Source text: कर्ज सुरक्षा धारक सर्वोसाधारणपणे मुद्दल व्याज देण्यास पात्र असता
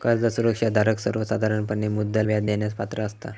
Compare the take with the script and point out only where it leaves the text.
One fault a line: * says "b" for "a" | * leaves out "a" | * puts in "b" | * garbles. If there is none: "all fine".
all fine